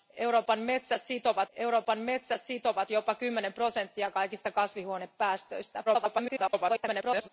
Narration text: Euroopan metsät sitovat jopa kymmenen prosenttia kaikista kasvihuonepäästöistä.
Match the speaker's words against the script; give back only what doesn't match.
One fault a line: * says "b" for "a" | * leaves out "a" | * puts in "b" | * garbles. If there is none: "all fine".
* puts in "euroopan metsät sitovat"
* garbles